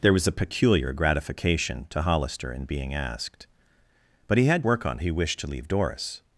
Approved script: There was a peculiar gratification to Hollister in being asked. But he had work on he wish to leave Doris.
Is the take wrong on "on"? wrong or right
right